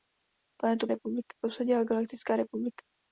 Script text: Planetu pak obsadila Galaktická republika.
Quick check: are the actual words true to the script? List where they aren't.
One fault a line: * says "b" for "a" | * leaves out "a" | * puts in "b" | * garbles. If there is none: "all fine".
* says "republika" for "pak"